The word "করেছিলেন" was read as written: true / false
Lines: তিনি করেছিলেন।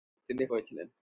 true